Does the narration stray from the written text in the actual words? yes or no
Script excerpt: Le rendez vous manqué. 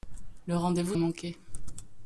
no